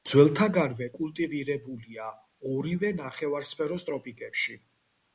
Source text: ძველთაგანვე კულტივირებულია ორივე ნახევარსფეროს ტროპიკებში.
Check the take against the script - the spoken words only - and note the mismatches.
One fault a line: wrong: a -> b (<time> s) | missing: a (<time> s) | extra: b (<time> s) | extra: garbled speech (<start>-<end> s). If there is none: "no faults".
no faults